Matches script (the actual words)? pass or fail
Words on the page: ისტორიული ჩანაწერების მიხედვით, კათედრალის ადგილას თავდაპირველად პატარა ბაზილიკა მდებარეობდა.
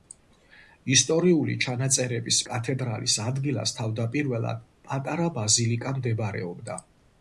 fail